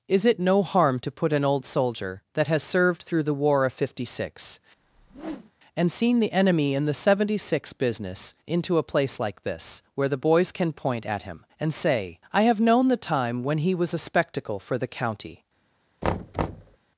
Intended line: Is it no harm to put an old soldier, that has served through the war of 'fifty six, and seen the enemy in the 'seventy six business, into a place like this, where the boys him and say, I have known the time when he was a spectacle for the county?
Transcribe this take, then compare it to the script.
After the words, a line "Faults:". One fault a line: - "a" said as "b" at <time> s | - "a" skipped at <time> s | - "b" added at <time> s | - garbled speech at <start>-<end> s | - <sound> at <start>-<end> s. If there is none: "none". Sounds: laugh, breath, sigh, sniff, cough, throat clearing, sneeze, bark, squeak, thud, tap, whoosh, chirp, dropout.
Is it no harm to put an old soldier, that has served through the war of 'fifty six, and seen the enemy in the 'seventy six business, into a place like this, where the boys can point at him and say, I have known the time when he was a spectacle for the county?
Faults:
- whoosh at 4.8-5.5 s
- "can point at" added at 10.5 s
- thud at 16.0-16.8 s